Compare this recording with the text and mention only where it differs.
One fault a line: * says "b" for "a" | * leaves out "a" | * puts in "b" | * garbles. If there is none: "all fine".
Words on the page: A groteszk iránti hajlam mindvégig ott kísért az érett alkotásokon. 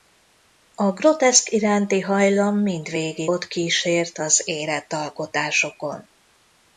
all fine